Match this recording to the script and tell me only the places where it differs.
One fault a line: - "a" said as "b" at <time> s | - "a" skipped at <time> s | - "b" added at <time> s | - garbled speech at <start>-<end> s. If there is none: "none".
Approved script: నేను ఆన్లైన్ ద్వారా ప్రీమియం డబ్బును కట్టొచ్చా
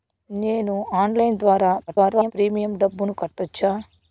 - garbled speech at 1.9-2.3 s